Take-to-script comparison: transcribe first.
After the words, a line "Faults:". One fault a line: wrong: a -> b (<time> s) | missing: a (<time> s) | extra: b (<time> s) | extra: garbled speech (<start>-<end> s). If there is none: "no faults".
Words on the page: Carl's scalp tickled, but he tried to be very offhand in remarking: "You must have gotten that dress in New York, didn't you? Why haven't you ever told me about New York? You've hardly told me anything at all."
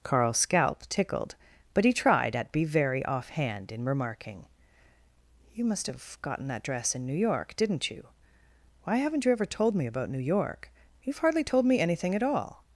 Carl's scalp tickled, but he tried at be very offhand in remarking: "You must have gotten that dress in New York, didn't you? Why haven't you ever told me about New York? You've hardly told me anything at all."
Faults:
wrong: to -> at (2.4 s)